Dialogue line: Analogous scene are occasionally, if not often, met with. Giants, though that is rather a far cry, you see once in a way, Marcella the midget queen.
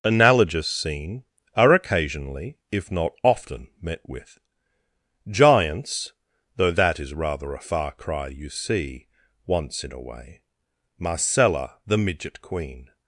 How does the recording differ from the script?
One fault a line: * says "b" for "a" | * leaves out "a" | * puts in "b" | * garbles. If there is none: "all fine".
all fine